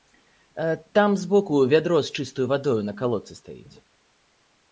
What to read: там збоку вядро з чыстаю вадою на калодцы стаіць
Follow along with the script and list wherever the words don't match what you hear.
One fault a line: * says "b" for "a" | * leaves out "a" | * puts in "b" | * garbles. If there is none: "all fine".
all fine